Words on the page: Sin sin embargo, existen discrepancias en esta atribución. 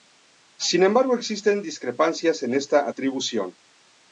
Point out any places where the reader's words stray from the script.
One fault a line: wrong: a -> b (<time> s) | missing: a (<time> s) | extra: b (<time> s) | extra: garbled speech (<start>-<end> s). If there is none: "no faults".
missing: sin (0.8 s)